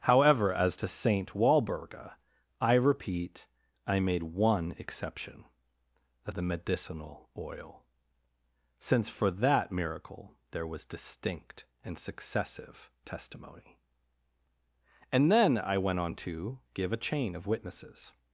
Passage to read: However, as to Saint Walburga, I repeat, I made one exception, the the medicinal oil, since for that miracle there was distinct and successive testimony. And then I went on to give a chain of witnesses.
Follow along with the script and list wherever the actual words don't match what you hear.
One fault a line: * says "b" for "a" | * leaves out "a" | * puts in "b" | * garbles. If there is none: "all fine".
all fine